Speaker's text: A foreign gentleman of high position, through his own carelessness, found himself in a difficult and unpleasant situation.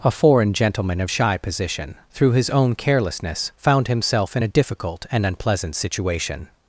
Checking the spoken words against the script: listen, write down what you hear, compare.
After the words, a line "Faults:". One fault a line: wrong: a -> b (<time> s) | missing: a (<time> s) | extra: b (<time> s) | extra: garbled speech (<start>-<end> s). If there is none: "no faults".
A foreign gentleman of shy position, through his own carelessness, found himself in a difficult and unpleasant situation.
Faults:
wrong: high -> shy (1.1 s)